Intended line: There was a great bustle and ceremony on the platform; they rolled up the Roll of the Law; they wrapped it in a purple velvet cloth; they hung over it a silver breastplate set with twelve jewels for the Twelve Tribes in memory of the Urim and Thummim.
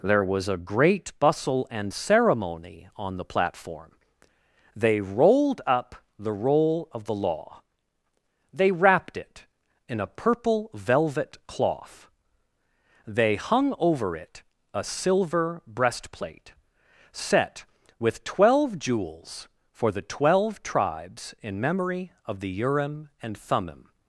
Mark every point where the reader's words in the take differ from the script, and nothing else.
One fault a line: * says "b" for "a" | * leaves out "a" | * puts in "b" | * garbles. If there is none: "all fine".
all fine